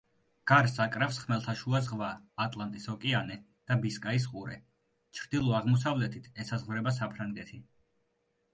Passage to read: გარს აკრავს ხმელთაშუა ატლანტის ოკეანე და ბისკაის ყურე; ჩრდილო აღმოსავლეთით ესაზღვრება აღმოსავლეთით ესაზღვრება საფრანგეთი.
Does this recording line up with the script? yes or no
no